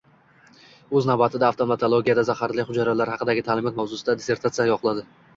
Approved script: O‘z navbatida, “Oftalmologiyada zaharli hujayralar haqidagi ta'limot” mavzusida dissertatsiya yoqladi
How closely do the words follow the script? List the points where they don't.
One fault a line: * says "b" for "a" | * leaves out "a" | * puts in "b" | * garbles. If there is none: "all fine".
all fine